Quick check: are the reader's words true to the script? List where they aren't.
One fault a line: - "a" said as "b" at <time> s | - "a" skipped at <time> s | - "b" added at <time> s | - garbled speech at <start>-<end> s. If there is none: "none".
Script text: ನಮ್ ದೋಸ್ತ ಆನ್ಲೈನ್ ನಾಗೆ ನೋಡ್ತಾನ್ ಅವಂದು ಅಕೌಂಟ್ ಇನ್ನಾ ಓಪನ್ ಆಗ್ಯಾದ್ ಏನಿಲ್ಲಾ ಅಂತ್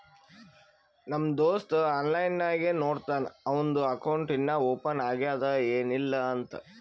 none